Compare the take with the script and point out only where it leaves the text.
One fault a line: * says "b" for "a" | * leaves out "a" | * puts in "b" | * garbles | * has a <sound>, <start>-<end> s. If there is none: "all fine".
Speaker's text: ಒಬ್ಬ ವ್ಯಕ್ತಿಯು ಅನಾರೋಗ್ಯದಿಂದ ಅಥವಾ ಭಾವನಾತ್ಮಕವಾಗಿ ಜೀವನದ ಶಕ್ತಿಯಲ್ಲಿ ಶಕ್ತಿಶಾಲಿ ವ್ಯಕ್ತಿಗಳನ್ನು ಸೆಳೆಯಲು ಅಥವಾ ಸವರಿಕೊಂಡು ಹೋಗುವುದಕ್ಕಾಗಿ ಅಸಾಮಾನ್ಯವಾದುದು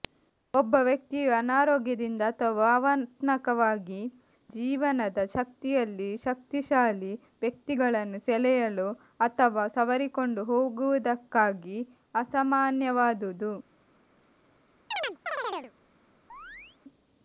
* has a chirp, 14.9-15.7 s
* has a chirp, 16.3-16.8 s